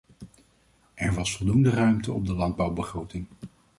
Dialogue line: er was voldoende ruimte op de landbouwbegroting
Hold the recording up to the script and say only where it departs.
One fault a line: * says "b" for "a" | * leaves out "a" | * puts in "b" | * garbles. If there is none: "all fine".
all fine